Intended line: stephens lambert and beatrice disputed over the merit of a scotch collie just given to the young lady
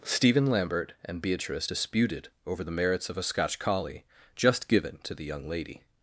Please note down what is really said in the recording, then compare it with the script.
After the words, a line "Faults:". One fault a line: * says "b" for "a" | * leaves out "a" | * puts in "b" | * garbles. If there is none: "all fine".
stephen lambert and beatrice disputed over the merits of a scotch collie just given to the young lady
Faults:
* says "stephen" for "stephens"
* says "merits" for "merit"